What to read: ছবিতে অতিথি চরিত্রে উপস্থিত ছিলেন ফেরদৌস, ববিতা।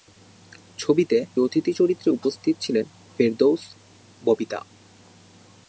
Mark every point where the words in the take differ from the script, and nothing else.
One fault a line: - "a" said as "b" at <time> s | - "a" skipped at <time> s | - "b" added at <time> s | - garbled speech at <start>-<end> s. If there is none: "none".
none